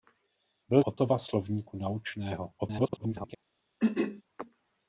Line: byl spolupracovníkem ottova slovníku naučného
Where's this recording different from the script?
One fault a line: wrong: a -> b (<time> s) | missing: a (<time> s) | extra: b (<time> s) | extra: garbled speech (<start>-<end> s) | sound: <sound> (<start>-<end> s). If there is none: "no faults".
missing: spolupracovníkem (0.8 s)
extra: garbled speech (2.6-3.4 s)
sound: throat clearing (3.8-4.2 s)